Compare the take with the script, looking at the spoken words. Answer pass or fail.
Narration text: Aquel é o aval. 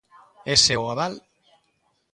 fail